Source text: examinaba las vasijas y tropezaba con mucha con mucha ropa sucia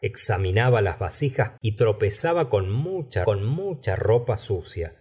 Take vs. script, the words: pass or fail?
pass